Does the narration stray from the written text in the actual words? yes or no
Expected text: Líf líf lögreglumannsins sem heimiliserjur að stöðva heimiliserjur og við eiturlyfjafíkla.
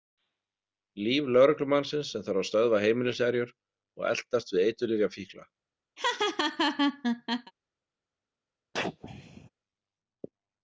yes